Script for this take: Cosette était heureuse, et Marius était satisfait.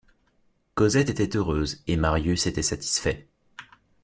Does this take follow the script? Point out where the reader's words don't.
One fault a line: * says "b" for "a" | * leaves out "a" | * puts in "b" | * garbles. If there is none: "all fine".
all fine